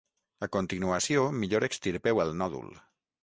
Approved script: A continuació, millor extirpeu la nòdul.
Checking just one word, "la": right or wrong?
wrong